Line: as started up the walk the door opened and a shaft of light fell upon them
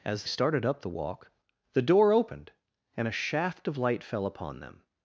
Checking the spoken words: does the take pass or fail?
pass